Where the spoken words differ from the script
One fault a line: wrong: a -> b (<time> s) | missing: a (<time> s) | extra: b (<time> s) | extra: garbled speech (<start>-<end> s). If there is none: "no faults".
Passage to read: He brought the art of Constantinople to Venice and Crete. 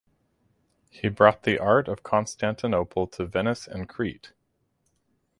no faults